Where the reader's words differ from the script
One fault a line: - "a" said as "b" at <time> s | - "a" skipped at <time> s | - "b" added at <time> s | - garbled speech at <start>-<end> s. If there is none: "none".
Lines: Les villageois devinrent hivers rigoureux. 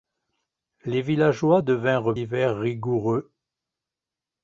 none